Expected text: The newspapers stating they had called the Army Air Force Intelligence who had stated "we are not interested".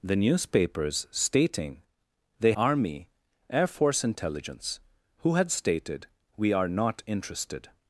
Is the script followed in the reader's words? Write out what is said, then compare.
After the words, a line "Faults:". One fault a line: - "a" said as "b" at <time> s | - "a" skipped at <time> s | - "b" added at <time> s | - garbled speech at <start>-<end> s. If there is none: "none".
The newspapers stating they Army Air Force Intelligence who had stated "we are not interested".
Faults:
- "had called the" skipped at 2.5 s